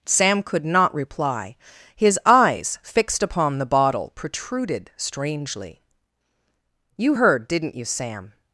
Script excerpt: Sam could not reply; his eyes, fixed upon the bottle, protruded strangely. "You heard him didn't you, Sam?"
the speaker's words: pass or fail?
fail